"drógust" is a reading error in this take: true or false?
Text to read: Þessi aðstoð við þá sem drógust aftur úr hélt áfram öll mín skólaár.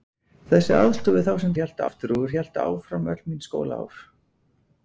true